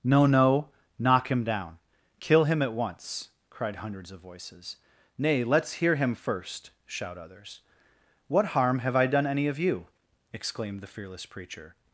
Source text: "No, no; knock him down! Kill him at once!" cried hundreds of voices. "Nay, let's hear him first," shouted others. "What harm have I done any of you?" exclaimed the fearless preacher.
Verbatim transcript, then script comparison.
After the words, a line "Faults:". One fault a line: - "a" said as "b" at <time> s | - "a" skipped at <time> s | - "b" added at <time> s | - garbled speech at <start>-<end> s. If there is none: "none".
"No, no; knock him down! Kill him at once!" cried hundreds of voices. "Nay, let's hear him first," shout others. "What harm have I done any of you?" exclaimed the fearless preacher.
Faults:
- "shouted" said as "shout" at 6.9 s